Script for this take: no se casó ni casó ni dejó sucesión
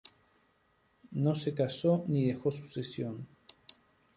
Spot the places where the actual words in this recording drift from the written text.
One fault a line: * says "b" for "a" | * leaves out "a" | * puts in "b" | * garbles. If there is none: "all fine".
* leaves out "casó ni"